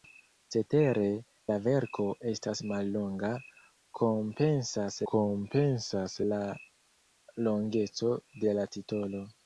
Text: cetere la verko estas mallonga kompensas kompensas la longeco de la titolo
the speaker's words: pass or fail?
pass